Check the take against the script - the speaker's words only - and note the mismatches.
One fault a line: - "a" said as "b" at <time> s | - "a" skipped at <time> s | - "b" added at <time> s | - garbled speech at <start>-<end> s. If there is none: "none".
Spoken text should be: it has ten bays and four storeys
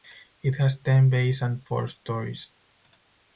none